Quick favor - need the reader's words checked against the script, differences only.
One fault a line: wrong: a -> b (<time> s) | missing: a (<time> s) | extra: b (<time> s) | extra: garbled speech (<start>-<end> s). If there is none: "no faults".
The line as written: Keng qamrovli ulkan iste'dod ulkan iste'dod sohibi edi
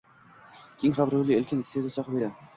missing: ulkan iste'dod (2.0 s)